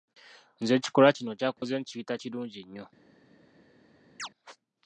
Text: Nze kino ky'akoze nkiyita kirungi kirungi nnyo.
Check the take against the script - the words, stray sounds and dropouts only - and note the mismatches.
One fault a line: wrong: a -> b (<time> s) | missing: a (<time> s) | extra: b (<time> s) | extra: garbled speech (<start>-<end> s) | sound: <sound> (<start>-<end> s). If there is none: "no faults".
extra: ekikolwa (0.8 s)
sound: dropout (1.6-1.6 s)
missing: kirungi (2.6 s)
sound: chirp (4.2-4.3 s)